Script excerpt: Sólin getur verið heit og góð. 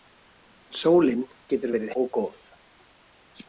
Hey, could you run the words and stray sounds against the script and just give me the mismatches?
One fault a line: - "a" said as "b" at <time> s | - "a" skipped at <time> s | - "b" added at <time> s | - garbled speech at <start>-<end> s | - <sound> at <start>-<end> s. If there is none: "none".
- "heit" skipped at 1.9 s